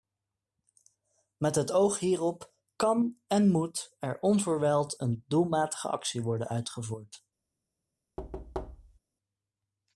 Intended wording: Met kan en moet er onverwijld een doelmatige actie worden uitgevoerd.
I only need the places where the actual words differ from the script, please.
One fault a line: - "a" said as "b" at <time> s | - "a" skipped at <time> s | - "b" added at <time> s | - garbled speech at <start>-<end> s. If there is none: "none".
- "het oog hierop" added at 1.6 s